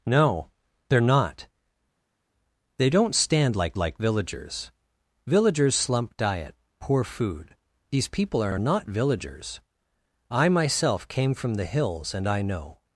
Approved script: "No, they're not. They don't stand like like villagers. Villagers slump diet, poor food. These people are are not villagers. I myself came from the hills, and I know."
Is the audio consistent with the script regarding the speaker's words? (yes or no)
yes